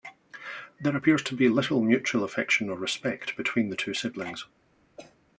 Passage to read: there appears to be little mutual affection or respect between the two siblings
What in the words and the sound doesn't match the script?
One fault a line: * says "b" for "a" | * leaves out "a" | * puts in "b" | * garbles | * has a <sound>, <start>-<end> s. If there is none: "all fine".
* has a cough, 5.0-5.2 s